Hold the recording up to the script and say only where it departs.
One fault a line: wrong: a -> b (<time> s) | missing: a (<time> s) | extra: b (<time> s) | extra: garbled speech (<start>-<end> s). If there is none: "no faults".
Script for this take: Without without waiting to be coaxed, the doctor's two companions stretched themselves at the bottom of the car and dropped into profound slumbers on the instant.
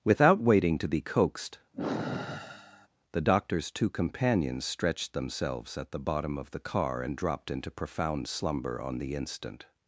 missing: without (0.4 s)
wrong: slumbers -> slumber (8.3 s)